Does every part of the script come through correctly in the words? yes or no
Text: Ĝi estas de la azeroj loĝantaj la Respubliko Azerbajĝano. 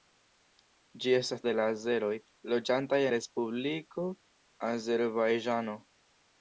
yes